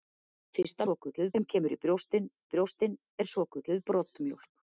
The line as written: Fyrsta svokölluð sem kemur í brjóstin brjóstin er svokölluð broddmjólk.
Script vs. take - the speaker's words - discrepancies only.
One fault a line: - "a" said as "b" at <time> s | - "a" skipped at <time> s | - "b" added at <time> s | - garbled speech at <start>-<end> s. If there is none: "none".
none